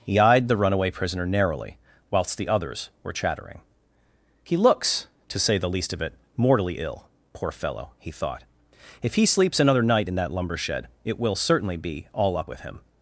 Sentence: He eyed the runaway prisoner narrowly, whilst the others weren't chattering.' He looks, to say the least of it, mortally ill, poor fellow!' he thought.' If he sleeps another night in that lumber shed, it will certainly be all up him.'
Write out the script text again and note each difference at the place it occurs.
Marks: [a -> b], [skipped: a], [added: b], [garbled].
He eyed the runaway prisoner narrowly, whilst the others [weren't -> were] chattering.' He looks, to say the least of it, mortally ill, poor fellow!' he thought.' If he sleeps another night in that lumber shed, it will certainly be all up [added: with] him.'